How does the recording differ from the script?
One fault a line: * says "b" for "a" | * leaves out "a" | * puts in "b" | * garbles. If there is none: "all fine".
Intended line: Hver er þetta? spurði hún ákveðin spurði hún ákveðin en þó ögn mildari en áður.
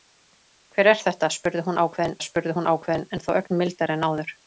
all fine